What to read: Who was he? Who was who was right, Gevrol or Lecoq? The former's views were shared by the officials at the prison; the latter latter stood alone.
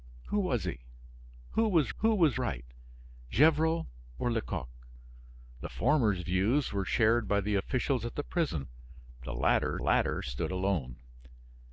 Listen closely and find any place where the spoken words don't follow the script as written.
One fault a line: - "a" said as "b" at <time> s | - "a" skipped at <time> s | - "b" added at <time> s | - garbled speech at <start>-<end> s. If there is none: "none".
none